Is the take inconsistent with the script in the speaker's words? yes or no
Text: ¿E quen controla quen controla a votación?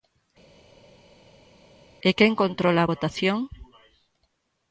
yes